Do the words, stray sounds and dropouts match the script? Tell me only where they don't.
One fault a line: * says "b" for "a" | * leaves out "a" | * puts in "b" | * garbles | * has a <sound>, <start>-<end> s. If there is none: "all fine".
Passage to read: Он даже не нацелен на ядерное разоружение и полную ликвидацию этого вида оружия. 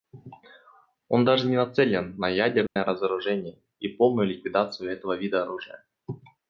* has a dropout, 2.7-2.8 s